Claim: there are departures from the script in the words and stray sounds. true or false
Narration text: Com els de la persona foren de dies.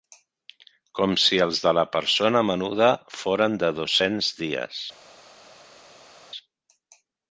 true